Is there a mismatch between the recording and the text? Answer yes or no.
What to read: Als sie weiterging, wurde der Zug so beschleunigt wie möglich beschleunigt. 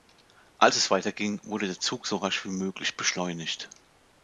yes